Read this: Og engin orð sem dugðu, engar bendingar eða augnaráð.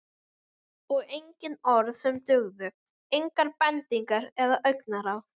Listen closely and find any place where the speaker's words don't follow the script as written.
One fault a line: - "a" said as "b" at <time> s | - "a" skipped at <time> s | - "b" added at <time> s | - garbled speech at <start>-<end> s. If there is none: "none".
none